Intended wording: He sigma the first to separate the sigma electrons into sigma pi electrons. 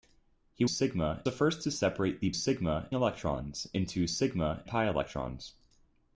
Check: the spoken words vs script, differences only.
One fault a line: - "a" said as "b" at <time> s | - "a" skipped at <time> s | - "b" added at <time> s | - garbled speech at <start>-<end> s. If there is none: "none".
none